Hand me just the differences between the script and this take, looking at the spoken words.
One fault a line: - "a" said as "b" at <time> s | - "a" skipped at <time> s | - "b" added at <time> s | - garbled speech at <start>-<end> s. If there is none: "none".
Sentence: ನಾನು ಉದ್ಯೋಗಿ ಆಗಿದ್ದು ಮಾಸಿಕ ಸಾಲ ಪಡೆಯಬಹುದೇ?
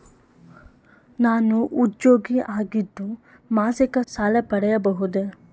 none